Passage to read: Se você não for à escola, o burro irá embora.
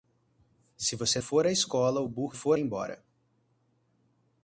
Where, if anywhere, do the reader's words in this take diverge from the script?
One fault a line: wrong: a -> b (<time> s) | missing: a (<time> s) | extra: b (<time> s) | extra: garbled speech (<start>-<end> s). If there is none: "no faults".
missing: não (1.2 s)
wrong: irá -> for (2.3 s)